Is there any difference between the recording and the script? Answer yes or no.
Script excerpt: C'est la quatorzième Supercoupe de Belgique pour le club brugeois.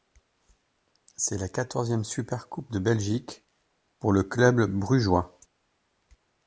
no